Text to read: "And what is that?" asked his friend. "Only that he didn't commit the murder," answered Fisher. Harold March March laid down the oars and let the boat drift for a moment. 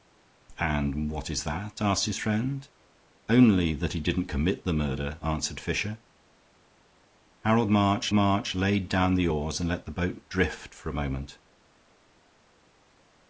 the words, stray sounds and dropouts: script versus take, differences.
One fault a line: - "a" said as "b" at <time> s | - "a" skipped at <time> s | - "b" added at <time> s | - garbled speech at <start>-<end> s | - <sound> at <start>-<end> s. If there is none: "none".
none